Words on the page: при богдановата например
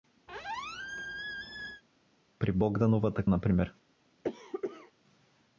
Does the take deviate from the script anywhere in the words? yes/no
no